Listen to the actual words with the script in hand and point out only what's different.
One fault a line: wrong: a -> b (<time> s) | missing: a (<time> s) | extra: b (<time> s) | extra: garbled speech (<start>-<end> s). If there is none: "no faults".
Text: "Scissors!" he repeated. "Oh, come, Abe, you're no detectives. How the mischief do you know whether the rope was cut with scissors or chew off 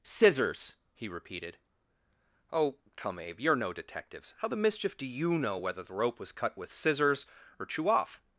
no faults